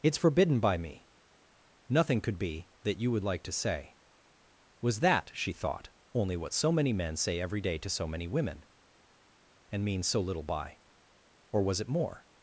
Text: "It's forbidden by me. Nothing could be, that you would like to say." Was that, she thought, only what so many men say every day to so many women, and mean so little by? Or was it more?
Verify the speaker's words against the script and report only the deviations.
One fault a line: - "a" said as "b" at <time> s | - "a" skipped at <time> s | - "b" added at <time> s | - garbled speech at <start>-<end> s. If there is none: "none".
none